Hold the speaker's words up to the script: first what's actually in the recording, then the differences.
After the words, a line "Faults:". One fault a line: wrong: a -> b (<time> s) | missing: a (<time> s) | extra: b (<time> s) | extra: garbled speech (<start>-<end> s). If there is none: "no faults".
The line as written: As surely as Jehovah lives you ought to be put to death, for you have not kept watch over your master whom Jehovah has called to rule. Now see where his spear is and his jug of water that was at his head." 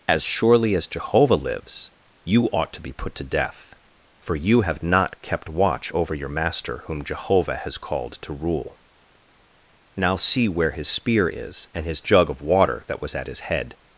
As surely as Jehovah lives you ought to be put to death, for you have not kept watch over your master whom Jehovah has called to rule. Now see where his spear is and his jug of water that was at his head."
Faults:
no faults